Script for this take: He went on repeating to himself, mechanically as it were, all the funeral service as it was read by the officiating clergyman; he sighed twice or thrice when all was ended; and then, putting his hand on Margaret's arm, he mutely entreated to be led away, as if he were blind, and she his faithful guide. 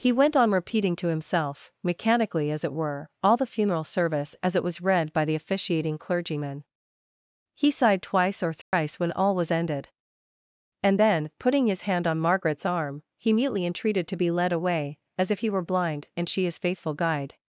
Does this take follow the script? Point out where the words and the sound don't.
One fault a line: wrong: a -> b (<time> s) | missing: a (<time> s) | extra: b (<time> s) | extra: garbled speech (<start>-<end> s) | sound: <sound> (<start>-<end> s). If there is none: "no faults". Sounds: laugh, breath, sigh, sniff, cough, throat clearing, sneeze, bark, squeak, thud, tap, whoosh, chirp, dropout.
sound: dropout (8.6-8.7 s)